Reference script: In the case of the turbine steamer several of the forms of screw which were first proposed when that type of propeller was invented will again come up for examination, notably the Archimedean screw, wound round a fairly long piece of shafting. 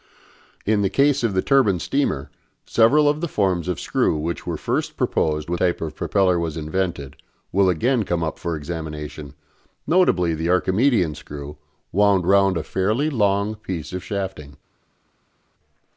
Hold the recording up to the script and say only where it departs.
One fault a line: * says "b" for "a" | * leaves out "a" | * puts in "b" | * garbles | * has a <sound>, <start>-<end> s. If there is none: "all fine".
* leaves out "that"